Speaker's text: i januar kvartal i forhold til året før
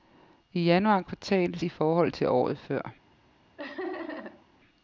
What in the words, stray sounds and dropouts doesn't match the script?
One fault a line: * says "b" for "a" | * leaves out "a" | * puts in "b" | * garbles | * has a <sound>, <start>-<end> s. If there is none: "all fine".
* has a laugh, 3.6-4.5 s